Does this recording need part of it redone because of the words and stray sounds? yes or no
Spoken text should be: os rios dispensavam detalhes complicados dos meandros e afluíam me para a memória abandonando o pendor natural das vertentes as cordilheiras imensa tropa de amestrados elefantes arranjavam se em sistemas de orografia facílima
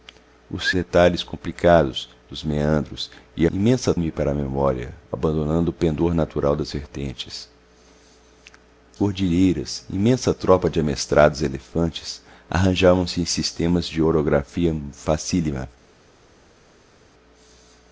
yes